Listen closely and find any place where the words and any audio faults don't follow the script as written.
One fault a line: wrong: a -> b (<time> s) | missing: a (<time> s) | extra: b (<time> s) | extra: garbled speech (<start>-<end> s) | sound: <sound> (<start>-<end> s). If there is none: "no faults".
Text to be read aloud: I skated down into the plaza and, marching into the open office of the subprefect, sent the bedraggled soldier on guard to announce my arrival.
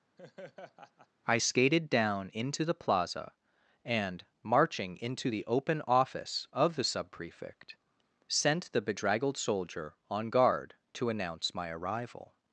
sound: laugh (0.2-1.1 s)